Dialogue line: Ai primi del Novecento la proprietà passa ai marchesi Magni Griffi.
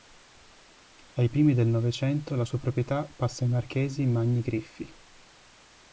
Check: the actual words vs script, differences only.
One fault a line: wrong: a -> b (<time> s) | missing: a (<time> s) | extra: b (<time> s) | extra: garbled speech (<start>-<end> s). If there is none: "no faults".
extra: sua (2.4 s)